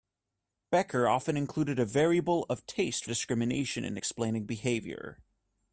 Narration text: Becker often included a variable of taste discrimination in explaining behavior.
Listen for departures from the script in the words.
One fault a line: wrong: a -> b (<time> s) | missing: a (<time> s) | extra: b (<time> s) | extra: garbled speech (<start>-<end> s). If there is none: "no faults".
no faults